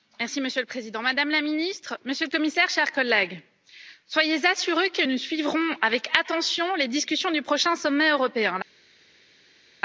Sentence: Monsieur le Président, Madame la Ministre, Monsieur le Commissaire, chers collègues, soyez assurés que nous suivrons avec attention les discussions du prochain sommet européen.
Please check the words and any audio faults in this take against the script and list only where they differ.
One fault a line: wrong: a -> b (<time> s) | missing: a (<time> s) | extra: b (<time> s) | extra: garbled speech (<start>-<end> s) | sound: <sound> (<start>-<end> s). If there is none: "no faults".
no faults